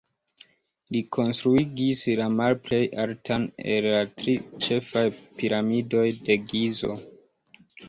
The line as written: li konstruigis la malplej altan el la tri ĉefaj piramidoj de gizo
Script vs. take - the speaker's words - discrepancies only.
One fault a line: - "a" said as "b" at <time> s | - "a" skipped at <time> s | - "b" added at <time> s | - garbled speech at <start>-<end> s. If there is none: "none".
none